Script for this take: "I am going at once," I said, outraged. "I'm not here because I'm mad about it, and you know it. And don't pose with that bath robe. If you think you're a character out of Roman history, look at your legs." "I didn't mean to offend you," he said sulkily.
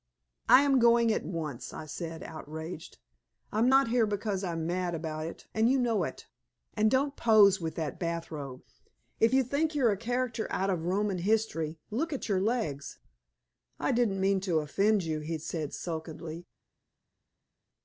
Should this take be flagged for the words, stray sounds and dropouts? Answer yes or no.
no